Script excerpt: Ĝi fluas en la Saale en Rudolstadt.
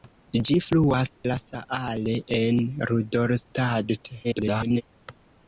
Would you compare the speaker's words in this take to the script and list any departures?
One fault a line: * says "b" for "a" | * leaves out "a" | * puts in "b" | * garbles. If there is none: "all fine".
* leaves out "en"
* garbles